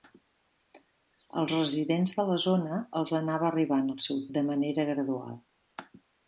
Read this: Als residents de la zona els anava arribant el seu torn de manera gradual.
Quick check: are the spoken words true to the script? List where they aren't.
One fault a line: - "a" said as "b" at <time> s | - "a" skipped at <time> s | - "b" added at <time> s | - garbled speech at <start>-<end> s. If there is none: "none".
- "torn" skipped at 4.2 s